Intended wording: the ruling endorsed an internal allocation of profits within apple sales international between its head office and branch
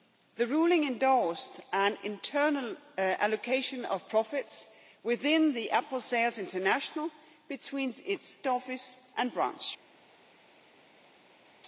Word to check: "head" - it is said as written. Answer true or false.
false